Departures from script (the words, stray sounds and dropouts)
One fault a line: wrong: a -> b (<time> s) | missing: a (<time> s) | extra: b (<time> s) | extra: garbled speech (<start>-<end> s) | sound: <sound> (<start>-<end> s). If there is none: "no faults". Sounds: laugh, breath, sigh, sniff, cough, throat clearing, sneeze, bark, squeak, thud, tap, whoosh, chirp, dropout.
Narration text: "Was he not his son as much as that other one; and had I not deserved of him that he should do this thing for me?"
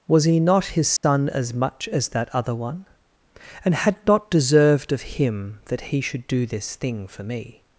sound: dropout (1.0-1.0 s)
missing: I (4.0 s)